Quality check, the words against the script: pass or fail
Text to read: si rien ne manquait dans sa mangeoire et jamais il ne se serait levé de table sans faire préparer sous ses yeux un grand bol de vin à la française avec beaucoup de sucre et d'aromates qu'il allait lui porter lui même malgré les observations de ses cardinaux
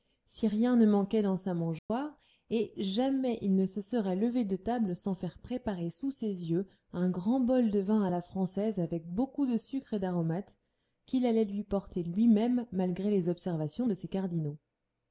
pass